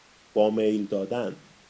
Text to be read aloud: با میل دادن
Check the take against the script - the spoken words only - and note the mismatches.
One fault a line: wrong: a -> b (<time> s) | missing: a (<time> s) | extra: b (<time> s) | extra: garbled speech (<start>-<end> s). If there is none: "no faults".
no faults